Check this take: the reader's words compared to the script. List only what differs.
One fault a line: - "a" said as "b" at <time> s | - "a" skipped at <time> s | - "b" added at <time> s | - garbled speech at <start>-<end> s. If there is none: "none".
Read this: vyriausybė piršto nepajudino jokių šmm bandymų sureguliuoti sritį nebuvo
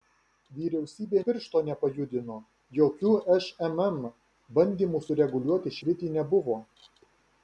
none